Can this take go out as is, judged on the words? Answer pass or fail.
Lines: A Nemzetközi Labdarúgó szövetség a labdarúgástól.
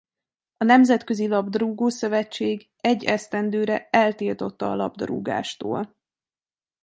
fail